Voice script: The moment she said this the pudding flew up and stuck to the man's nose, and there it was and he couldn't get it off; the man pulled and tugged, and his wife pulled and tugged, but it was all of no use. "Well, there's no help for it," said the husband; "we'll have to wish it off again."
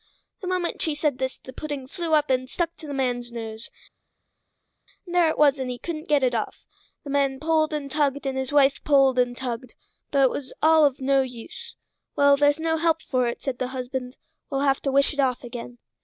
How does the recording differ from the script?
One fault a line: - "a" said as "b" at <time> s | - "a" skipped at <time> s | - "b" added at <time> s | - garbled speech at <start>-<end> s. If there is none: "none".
none